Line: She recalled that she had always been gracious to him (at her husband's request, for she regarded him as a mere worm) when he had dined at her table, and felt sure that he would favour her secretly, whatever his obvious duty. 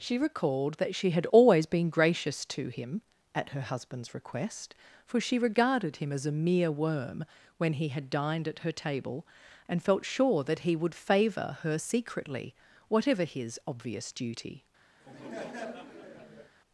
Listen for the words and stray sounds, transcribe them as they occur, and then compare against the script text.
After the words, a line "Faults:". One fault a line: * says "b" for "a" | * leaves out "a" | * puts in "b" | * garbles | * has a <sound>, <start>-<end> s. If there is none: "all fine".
She recalled that she had always been gracious to him (at her husband's request, for she regarded him as a mere worm) when he had dined at her table, and felt sure that he would favour her secretly, whatever his obvious duty.
Faults:
* has a laugh, 15.0-16.6 s